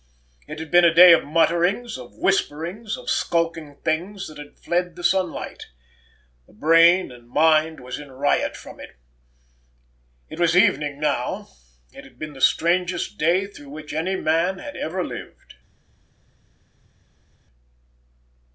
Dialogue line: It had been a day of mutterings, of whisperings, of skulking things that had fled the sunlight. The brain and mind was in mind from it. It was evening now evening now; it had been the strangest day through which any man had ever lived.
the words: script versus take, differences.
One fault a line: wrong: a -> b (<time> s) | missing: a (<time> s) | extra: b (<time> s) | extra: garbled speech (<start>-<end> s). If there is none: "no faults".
wrong: mind -> riot (8.1 s)
missing: evening now (11.5 s)